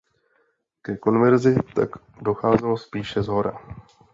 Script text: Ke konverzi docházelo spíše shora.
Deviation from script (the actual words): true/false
true